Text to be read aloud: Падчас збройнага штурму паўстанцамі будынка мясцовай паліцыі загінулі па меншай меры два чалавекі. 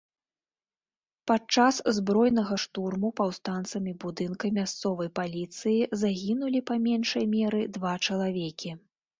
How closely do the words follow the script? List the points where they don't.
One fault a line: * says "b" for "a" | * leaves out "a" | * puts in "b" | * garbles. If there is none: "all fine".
all fine